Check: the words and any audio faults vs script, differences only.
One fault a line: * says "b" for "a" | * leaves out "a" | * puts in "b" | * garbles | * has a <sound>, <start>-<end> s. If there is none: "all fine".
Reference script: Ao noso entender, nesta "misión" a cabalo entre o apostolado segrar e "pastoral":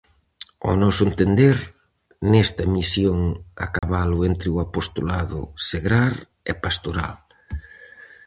* has a dropout, 3.8-3.8 s